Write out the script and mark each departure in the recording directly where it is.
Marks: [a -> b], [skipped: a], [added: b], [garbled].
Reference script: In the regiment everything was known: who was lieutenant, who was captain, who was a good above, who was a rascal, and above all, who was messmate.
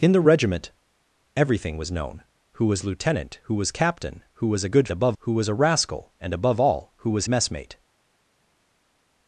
In the regiment everything was known: who was lieutenant, who was captain, who was a good above, who was a rascal, and above all, who was messmate.